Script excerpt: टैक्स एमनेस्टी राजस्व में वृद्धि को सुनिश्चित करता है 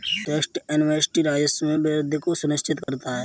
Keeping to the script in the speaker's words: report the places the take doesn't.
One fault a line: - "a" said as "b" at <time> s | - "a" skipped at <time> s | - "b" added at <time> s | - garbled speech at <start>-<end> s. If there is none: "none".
none